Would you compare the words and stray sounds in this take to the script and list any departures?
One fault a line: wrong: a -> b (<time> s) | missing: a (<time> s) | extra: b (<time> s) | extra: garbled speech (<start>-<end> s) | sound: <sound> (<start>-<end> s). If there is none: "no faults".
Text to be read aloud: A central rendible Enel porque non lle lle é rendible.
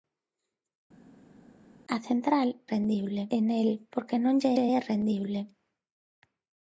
no faults